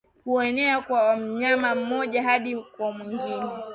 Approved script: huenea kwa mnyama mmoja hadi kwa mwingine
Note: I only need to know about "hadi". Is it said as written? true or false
true